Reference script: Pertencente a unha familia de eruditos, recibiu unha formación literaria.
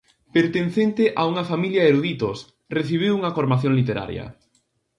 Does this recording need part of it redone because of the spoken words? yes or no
no